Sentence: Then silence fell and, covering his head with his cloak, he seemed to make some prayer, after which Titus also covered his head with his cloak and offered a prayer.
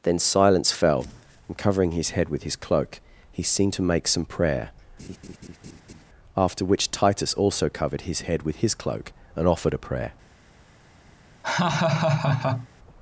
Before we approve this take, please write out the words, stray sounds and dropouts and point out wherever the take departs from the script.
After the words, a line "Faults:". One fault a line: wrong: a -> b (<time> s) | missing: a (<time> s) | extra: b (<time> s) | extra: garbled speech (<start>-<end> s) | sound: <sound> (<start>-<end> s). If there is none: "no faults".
Then silence fell and, covering his head with his cloak, he seemed to make some prayer, after which Titus also covered his head with his cloak and offered a prayer.
Faults:
sound: laugh (5.0-6.0 s)
sound: laugh (11.4-12.7 s)